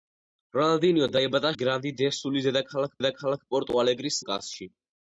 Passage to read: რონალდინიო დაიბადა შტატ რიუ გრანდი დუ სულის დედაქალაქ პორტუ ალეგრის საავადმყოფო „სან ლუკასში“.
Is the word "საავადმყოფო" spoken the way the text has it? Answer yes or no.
no